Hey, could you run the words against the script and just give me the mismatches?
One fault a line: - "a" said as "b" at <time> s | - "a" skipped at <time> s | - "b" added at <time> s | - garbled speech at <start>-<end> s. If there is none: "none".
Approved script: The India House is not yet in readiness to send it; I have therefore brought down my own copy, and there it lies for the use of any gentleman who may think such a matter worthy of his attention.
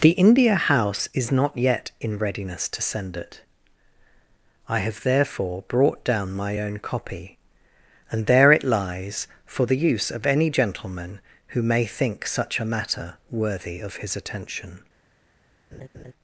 none